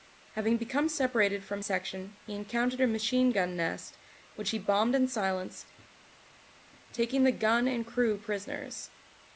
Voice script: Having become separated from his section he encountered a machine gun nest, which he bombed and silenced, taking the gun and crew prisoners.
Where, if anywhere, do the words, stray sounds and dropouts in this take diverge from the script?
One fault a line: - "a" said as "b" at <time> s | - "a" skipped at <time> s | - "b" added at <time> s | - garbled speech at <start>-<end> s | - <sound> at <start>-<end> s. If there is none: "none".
- "his" skipped at 1.6 s